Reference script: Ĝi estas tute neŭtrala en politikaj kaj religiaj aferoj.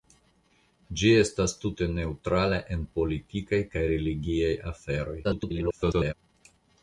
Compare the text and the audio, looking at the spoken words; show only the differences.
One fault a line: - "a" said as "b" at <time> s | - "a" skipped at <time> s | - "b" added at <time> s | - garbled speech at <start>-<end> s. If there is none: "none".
- garbled speech at 5.2-6.1 s